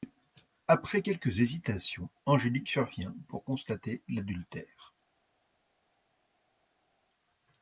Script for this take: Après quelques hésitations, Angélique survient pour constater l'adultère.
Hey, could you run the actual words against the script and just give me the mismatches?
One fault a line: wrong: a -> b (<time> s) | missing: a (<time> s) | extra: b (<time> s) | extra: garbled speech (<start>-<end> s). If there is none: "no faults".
no faults